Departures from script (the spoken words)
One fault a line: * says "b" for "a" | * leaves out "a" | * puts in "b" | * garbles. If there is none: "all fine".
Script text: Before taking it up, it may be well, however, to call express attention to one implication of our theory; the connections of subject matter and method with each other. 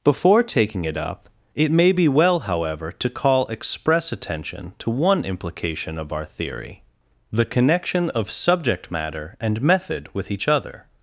* says "connection" for "connections"